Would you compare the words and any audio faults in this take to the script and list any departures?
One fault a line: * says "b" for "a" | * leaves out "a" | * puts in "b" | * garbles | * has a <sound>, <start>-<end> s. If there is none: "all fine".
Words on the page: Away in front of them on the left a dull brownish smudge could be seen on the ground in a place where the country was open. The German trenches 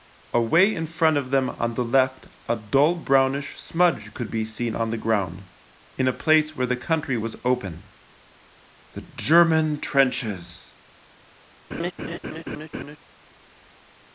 * has a laugh, 11.7-13.0 s